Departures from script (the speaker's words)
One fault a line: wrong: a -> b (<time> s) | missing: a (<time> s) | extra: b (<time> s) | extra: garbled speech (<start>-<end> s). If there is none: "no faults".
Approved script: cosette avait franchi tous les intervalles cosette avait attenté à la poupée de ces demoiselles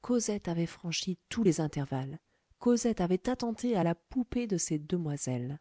no faults